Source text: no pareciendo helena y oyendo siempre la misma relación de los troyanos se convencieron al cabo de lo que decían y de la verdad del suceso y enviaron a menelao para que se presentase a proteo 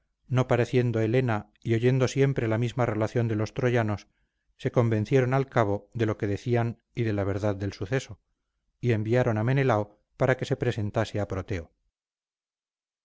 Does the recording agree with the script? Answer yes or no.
yes